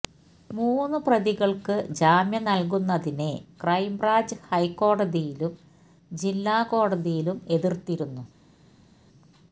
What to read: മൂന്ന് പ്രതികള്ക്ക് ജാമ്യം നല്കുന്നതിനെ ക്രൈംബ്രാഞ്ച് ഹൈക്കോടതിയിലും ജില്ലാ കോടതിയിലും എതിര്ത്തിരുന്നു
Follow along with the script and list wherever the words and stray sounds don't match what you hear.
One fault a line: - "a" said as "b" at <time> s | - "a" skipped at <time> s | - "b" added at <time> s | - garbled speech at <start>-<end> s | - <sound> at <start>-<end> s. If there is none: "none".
none